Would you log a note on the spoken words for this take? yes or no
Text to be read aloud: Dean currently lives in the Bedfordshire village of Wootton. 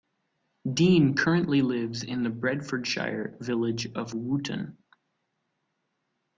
no